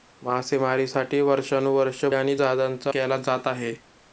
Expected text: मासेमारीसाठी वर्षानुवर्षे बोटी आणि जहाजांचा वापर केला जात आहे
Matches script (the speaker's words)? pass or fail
fail